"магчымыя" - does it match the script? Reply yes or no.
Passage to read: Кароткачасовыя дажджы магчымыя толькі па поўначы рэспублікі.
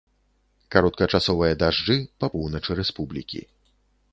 no